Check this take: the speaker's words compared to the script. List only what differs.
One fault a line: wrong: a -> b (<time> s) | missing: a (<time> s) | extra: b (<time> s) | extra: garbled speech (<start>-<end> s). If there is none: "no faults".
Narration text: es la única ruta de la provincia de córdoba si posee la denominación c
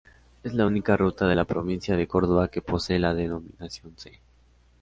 wrong: si -> que (2.5 s)